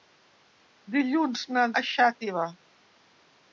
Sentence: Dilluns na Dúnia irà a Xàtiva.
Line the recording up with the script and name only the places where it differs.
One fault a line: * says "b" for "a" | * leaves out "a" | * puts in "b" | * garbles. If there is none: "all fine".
* leaves out "Dúnia irà"